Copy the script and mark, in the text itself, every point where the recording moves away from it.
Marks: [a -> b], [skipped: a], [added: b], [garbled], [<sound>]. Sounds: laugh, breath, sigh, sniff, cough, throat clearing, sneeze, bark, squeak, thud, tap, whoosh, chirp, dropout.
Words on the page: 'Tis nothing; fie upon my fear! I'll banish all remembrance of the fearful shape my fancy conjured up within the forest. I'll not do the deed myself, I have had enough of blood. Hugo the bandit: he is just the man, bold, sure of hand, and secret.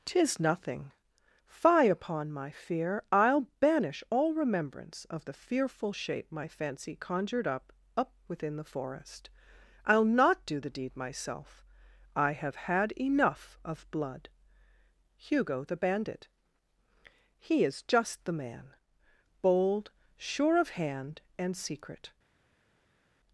'Tis nothing; fie upon my fear! I'll banish all remembrance of the fearful shape my fancy conjured up [added: up] within the forest. I'll not do the deed myself, I have had enough of blood. Hugo the bandit: he is just the man, bold, sure of hand, and secret.